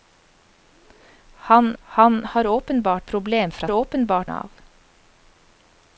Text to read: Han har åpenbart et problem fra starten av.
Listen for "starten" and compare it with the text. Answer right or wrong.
wrong